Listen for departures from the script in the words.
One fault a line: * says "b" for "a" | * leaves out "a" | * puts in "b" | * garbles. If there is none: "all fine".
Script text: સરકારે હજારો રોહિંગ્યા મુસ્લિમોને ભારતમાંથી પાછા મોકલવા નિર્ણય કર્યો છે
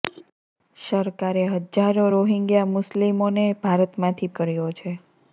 * leaves out "પાછા મોકલવા નિર્ણય"